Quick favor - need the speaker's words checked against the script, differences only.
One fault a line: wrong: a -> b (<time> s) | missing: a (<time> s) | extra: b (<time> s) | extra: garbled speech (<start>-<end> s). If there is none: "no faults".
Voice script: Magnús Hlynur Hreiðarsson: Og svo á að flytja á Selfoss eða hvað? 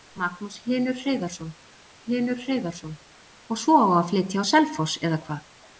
extra: Hlynur Hreiðarsson (2.0 s)